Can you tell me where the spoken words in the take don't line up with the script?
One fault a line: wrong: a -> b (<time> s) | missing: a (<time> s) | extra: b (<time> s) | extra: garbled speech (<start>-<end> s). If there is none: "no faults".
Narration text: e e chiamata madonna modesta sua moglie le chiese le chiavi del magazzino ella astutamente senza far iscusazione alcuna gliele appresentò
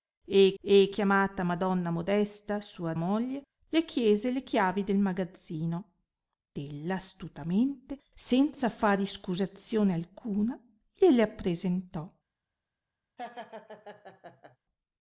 no faults